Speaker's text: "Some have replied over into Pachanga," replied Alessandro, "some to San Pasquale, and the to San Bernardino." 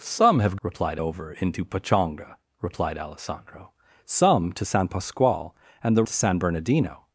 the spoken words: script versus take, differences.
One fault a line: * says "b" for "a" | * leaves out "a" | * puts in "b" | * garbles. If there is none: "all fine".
all fine